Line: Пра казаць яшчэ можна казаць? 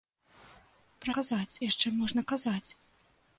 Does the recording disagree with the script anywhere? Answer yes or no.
no